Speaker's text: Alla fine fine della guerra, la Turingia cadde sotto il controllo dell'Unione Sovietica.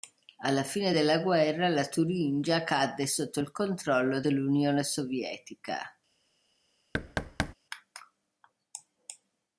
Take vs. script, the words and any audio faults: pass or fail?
fail